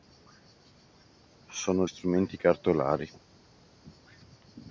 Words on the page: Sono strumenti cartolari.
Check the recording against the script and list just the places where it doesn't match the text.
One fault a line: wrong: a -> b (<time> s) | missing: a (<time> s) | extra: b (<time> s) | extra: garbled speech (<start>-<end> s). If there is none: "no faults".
no faults